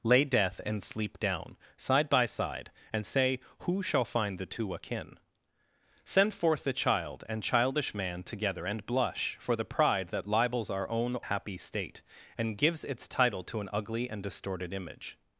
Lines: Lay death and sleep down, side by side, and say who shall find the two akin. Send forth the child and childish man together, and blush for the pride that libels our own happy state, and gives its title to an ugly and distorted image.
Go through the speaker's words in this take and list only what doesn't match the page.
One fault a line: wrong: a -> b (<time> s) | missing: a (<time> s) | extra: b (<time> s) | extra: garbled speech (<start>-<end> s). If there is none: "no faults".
no faults